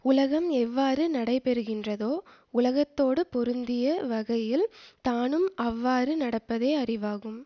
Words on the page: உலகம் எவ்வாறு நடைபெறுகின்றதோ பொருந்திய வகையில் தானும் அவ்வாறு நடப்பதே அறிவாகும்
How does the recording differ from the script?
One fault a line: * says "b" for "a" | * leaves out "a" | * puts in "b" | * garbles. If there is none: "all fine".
* puts in "உலகத்தோடு"